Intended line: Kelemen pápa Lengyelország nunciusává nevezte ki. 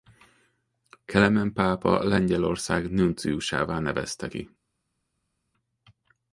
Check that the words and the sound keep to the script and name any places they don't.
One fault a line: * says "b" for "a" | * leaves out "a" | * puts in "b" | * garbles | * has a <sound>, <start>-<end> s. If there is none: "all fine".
all fine